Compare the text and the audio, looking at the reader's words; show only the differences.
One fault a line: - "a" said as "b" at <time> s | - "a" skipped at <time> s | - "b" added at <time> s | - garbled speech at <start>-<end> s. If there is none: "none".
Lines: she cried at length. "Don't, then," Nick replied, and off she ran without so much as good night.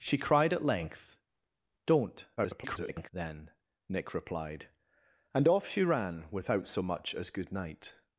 - garbled speech at 2.4-3.1 s